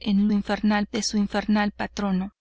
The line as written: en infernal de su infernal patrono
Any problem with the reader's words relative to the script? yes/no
no